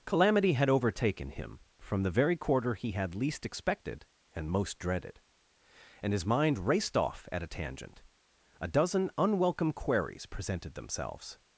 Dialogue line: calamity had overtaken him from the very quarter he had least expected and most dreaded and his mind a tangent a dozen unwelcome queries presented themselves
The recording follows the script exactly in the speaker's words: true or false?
false